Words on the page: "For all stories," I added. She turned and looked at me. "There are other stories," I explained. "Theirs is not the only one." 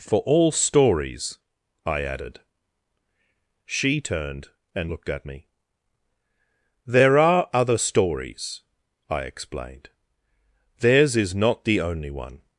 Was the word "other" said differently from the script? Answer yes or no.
no